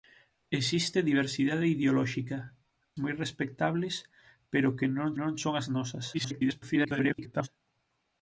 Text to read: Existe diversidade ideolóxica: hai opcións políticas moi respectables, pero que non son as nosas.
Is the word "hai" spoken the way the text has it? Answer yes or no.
no